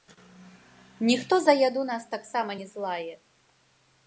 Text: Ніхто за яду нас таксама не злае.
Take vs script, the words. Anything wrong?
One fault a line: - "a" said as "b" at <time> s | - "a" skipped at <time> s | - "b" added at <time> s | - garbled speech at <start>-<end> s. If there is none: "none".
none